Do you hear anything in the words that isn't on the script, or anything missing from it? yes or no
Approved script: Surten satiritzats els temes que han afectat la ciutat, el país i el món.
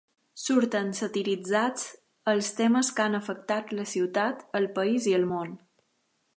no